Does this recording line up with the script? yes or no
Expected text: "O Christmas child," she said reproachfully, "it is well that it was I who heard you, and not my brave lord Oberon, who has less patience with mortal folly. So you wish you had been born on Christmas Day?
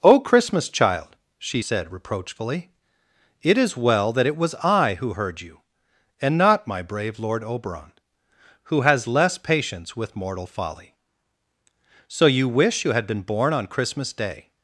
yes